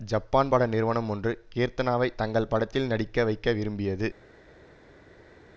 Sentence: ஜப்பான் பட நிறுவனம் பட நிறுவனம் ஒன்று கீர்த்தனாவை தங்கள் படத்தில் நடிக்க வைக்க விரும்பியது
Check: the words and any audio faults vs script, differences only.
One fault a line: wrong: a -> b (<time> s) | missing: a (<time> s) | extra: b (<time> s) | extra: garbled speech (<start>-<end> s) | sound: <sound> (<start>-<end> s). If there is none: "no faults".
missing: பட நிறுவனம் (1.1 s)